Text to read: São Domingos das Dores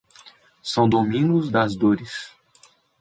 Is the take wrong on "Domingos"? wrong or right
right